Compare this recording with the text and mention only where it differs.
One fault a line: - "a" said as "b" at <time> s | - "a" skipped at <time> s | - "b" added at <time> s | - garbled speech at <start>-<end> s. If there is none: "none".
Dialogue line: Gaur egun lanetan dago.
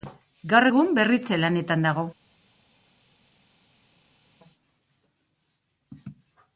- "berritze" added at 1.0 s